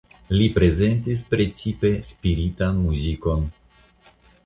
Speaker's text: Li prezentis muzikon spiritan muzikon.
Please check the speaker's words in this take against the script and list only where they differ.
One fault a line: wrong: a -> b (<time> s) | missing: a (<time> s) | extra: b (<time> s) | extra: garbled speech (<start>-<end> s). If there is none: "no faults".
wrong: muzikon -> precipe (1.3 s)